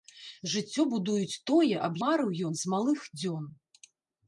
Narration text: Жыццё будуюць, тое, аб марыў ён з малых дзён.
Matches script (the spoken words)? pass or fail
pass